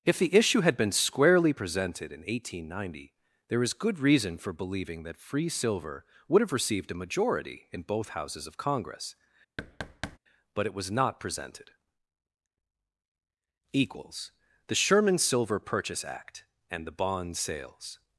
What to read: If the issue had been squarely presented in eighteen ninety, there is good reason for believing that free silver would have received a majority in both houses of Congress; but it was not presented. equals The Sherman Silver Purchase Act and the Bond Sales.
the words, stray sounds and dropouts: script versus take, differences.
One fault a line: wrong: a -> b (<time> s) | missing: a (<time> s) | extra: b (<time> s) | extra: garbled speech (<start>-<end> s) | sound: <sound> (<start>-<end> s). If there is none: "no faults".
sound: thud (9.6-10.2 s)